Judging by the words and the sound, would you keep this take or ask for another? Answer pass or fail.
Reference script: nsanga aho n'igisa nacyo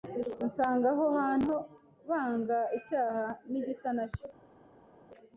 fail